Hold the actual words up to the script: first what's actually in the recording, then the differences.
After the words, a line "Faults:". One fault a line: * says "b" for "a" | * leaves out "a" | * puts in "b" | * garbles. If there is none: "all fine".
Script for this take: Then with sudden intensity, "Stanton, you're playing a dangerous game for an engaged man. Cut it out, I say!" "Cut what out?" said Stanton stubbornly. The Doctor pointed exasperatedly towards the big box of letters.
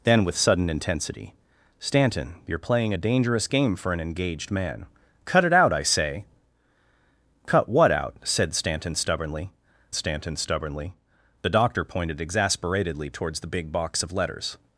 Then with sudden intensity, "Stanton, you're playing a dangerous game for an engaged man. Cut it out, I say!" "Cut what out?" said Stanton stubbornly Stanton stubbornly. The Doctor pointed exasperatedly towards the big box of letters.
Faults:
* puts in "Stanton stubbornly"